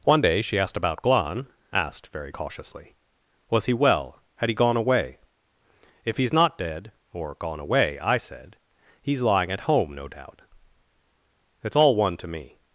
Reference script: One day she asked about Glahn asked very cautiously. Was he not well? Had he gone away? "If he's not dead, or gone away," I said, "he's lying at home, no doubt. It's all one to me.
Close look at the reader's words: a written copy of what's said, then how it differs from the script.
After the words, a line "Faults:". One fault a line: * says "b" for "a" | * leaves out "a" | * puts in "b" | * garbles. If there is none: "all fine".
One day she asked about Glahn asked very cautiously. Was he well? Had he gone away? "If he's not dead, or gone away," I said, "he's lying at home, no doubt. It's all one to me.
Faults:
* leaves out "not"